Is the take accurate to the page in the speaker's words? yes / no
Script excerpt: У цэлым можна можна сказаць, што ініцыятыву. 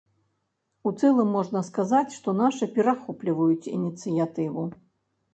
no